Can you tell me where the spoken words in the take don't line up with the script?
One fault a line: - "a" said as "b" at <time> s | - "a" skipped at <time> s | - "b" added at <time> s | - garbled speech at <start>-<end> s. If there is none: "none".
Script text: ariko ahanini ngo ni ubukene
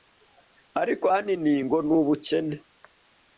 none